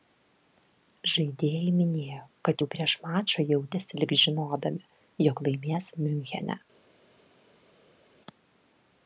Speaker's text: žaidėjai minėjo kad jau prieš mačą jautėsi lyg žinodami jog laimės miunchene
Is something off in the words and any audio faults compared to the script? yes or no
no